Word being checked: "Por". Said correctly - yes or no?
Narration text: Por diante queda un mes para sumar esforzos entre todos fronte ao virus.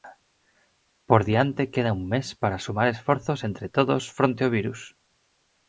yes